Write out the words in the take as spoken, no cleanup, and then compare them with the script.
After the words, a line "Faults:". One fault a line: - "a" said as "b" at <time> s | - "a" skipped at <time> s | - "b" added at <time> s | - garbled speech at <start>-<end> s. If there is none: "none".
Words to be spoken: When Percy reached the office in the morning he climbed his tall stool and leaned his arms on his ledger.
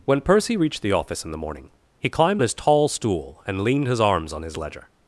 When Percy reached the office in the morning he climbed his tall stool and leaned his arms on his ledger.
Faults:
none